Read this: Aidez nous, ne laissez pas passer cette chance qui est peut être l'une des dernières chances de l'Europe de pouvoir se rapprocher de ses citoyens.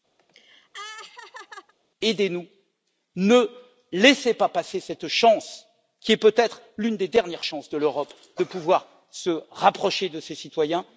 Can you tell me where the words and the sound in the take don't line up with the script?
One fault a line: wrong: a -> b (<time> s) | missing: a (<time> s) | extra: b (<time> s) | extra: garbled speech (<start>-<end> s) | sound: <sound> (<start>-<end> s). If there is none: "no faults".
sound: laugh (0.2-1.7 s)